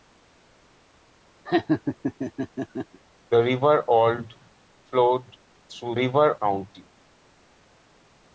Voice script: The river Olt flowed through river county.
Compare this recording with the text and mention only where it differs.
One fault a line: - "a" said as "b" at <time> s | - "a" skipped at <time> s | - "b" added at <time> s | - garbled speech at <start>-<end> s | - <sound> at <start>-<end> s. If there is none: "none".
- laugh at 1.5-3.0 s